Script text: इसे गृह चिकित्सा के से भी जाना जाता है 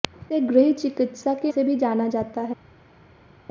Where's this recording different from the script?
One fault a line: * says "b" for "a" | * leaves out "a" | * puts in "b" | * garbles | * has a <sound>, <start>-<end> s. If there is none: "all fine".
all fine